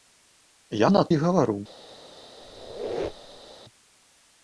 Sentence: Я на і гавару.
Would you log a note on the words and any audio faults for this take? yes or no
yes